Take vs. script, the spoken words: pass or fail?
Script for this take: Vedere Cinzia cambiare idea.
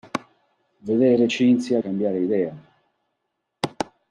pass